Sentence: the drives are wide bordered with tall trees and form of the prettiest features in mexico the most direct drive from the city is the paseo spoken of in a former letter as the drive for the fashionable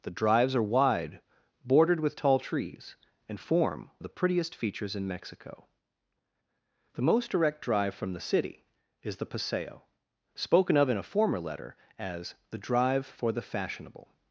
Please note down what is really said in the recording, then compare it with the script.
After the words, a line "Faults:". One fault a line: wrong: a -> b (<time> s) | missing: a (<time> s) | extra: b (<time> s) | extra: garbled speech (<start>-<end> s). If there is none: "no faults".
the drives are wide bordered with tall trees and form of the prettiest features in mexico the most direct drive from the city is the paseo spoken of in a former letter as the drive for the fashionable
Faults:
no faults